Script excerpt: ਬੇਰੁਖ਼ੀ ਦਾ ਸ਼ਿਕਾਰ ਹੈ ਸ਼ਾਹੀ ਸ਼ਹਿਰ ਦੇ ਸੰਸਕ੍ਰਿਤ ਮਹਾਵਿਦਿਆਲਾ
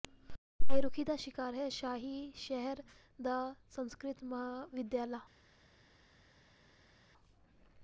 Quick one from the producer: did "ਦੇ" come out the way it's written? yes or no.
no